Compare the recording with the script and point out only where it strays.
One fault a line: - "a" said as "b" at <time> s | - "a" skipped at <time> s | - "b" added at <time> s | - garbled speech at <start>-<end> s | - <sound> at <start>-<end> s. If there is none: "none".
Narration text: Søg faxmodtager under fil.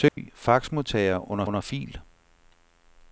- dropout at 0.1-0.2 s
- "under" added at 1.5 s